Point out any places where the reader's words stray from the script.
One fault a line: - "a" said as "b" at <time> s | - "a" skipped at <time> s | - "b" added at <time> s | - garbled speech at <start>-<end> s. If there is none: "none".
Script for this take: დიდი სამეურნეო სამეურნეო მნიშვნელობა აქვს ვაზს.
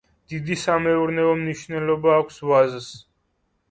- "სამეურნეო" skipped at 1.4 s